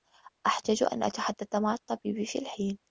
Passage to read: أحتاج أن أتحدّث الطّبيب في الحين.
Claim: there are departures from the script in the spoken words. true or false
true